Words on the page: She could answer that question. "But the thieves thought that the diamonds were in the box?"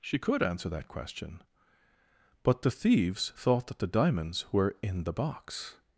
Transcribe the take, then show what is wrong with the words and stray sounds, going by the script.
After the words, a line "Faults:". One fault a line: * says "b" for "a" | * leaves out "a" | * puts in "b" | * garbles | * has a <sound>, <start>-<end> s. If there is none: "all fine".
She could answer that question. "But the thieves thought that the diamonds were in the box?"
Faults:
all fine